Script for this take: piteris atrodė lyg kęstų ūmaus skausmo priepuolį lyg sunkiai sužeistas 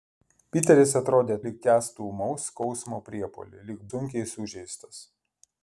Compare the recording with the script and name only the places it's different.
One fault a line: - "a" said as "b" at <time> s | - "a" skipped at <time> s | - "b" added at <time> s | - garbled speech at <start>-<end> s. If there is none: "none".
none